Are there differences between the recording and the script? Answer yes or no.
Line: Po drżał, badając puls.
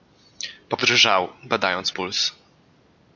no